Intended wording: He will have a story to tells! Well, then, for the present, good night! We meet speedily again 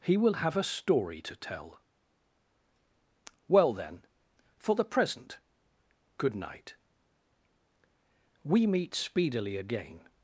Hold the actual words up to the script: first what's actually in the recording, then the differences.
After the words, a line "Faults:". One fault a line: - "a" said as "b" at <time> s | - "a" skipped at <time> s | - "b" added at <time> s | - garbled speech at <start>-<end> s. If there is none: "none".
He will have a story to tell! Well, then, for the present, good night! We meet speedily again
Faults:
- "tells" said as "tell" at 1.4 s